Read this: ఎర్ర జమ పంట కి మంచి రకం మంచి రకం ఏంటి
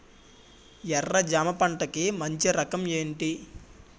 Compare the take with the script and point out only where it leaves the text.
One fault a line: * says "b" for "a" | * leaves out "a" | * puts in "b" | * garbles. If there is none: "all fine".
* leaves out "మంచి రకం"